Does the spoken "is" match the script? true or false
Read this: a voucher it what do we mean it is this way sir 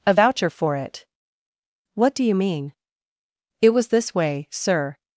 false